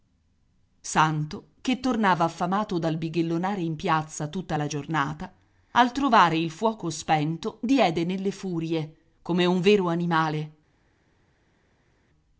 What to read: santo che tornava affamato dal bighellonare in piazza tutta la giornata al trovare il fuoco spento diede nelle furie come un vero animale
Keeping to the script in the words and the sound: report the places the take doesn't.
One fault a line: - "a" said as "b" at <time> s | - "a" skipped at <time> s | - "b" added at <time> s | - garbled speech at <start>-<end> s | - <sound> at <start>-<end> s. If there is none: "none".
none